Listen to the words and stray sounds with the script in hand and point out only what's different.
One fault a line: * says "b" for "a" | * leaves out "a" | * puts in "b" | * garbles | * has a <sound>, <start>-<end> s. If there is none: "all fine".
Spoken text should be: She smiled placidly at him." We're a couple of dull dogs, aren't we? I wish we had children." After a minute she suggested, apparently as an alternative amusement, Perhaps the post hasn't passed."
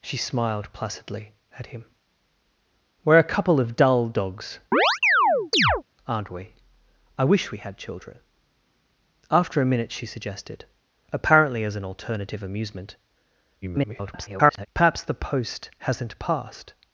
* has a chirp, 4.7-5.8 s
* garbles